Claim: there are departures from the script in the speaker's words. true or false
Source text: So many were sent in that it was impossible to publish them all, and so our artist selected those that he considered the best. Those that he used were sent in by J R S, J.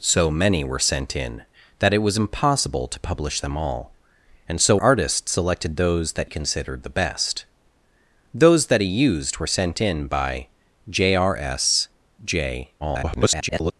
true